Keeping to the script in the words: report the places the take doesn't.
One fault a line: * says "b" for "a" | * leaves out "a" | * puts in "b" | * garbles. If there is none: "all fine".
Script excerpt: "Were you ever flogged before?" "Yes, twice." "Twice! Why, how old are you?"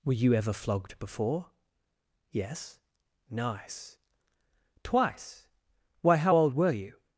* says "nice" for "twice"
* says "were" for "are"